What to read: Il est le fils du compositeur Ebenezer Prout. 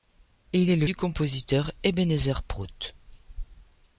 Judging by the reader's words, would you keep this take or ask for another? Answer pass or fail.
fail